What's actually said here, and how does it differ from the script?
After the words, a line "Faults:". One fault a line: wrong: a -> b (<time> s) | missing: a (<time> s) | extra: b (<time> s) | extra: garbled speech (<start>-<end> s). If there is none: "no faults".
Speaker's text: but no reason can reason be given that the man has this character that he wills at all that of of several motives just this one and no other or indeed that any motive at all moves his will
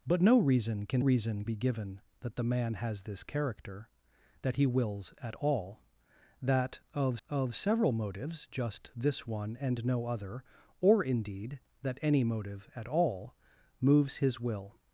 but no reason can reason be given that the man has this character that he wills at all that of of several motives just this one and no other or indeed that any motive at all moves his will
Faults:
no faults